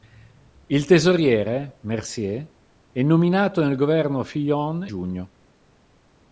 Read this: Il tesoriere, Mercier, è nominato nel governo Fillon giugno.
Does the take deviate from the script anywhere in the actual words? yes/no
no